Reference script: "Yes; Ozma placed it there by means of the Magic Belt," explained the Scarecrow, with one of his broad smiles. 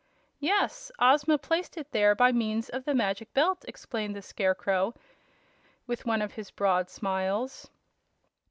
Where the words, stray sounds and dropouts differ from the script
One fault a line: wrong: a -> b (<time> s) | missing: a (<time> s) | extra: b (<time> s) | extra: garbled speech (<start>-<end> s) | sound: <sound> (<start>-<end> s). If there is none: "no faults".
no faults